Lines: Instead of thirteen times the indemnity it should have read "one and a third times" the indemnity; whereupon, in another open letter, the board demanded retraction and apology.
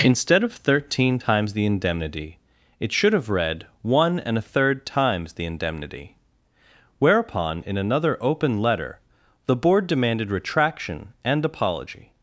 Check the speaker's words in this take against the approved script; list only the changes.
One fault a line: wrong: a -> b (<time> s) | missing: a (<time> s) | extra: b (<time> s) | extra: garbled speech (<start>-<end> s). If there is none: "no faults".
no faults